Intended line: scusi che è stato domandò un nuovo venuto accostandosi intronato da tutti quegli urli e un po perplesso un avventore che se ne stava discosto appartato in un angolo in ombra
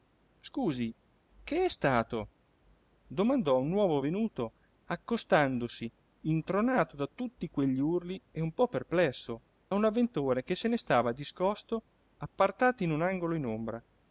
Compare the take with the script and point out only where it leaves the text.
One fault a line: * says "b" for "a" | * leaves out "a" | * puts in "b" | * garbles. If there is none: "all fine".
all fine